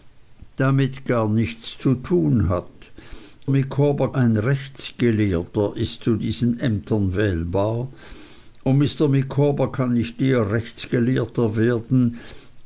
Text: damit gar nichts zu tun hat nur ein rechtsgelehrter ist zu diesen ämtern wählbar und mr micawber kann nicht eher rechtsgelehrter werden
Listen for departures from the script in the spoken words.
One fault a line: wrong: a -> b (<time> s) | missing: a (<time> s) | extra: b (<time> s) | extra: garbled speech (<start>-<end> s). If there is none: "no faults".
wrong: nur -> micawber (3.5 s)